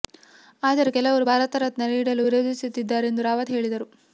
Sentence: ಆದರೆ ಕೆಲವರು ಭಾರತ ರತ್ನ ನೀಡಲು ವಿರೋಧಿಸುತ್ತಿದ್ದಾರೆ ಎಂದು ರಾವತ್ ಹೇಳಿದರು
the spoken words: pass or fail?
pass